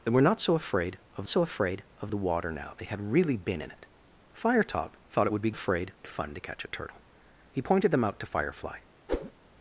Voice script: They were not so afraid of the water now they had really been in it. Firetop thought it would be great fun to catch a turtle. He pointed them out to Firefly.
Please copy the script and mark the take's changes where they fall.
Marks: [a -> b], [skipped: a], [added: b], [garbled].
They were not so afraid of [added: so afraid of] the water now they had really been in it. Firetop thought it would be [great -> afraid] fun to catch a turtle. He pointed them out to Firefly.